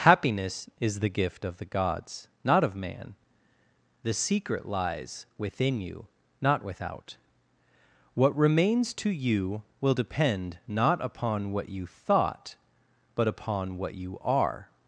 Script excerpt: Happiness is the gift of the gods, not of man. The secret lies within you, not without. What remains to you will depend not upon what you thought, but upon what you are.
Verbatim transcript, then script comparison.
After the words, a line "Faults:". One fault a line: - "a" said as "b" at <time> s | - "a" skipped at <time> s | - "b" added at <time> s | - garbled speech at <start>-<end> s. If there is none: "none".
Happiness is the gift of the gods, not of man. The secret lies within you, not without. What remains to you will depend not upon what you thought, but upon what you are.
Faults:
none